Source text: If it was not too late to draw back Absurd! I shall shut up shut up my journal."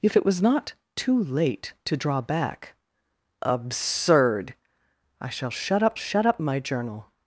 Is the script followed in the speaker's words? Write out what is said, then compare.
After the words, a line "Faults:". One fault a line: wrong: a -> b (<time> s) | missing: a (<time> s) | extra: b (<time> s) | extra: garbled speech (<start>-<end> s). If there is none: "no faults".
If it was not too late to draw back Absurd! I shall shut up shut up my journal."
Faults:
no faults